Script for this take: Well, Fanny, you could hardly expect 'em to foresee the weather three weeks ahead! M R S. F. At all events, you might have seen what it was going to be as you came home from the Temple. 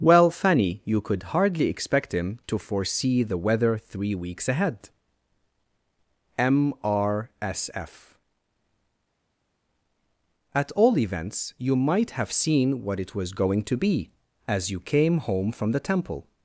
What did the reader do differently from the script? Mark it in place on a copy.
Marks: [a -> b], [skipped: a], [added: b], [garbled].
Well, Fanny, you could hardly expect ['em -> him] to foresee the weather three weeks ahead! M R S. F. At all events, you might have seen what it was going to be as you came home from the Temple.